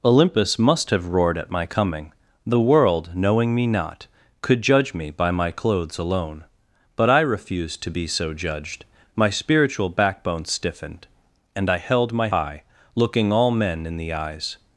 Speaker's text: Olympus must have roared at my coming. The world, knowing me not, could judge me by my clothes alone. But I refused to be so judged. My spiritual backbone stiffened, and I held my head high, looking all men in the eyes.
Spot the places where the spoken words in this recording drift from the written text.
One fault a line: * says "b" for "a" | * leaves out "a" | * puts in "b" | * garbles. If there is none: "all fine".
* leaves out "head"